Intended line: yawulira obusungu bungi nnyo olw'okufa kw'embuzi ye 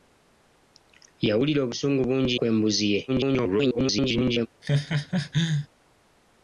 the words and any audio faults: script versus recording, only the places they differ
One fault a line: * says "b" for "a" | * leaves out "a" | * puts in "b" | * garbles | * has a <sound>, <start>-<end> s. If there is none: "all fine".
* leaves out "nnyo olw'okufa"
* garbles
* has a laugh, 4.6-5.7 s